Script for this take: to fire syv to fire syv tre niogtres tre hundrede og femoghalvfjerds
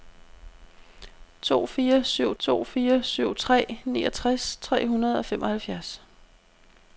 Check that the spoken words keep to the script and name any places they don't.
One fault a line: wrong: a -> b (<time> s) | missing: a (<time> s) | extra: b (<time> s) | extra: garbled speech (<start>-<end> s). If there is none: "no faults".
no faults